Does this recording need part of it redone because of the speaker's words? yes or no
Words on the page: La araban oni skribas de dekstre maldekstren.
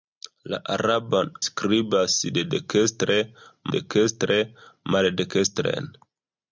yes